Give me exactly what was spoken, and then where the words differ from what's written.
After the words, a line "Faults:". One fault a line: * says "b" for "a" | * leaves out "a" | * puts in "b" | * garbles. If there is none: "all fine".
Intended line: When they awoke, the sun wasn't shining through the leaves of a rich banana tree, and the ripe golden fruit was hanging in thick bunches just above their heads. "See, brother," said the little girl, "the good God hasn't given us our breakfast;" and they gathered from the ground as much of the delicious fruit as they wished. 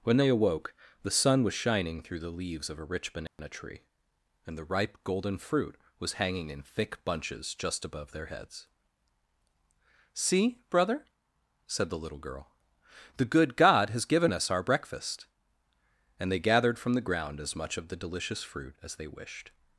When they awoke, the sun was shining through the leaves of a rich banana tree, and the ripe golden fruit was hanging in thick bunches just above their heads. "See, brother," said the little girl, "the good God has given us our breakfast;" and they gathered from the ground as much of the delicious fruit as they wished.
Faults:
* says "was" for "wasn't"
* says "has" for "hasn't"